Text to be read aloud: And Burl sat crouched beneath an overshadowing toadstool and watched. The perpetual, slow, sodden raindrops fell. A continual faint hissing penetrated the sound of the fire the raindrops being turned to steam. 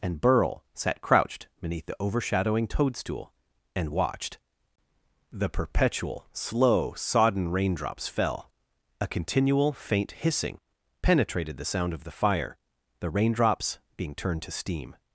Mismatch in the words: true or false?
true